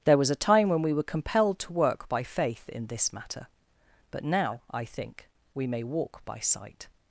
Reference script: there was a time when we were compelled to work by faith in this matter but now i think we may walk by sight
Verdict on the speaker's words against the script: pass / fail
pass